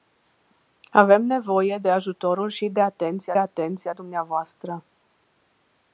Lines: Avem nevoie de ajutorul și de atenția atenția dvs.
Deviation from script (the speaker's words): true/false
false